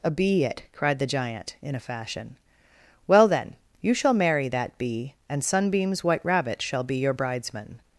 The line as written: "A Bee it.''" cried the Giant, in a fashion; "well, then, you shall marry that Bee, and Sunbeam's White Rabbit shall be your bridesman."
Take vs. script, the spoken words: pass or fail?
pass